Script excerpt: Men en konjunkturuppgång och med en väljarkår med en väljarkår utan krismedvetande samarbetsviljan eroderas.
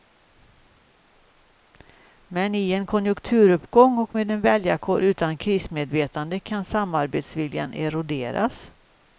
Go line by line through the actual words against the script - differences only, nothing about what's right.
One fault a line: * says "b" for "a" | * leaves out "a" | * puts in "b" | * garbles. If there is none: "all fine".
* puts in "i"
* leaves out "med en väljarkår"
* puts in "kan"